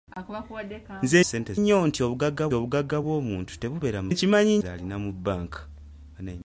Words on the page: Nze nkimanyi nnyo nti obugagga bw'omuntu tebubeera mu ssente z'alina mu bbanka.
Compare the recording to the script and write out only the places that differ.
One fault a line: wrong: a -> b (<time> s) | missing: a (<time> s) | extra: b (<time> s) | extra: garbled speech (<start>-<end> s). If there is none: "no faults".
wrong: nkimanyi -> ssente (1.2 s)
extra: obugagga (2.6 s)
wrong: ssente -> nkimanyi (4.1 s)